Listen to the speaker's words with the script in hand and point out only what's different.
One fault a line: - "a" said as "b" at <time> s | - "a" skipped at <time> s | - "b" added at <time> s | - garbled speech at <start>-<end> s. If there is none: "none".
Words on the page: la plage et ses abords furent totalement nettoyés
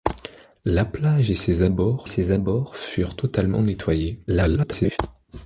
- "ses abords" added at 2.1 s
- garbled speech at 4.3-5.0 s